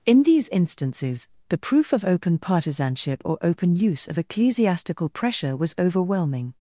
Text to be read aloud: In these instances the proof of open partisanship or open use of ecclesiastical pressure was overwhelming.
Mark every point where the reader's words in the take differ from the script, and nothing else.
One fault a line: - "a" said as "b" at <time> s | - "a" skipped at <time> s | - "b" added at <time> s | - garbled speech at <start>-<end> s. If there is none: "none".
none